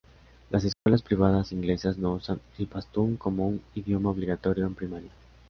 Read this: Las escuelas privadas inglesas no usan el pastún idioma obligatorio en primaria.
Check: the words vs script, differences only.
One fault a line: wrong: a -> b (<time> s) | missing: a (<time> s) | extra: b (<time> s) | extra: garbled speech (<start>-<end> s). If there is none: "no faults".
extra: como un (3.2 s)